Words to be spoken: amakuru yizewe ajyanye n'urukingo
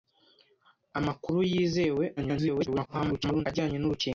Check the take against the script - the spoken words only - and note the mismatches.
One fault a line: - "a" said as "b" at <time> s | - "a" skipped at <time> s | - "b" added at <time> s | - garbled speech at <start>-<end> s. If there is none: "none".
- garbled speech at 2.2-3.5 s